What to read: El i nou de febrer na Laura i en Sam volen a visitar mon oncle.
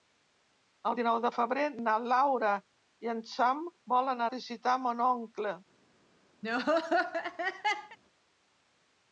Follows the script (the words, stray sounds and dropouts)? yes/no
no